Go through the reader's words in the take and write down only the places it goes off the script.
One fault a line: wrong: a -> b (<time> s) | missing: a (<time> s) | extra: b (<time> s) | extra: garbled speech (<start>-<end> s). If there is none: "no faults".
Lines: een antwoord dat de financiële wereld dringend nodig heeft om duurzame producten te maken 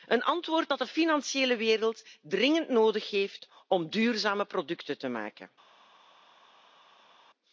no faults